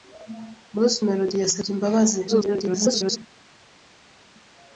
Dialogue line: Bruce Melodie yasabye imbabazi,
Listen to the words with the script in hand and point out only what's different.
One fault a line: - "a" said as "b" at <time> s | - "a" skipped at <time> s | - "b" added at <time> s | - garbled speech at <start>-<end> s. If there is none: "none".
- garbled speech at 2.3-3.2 s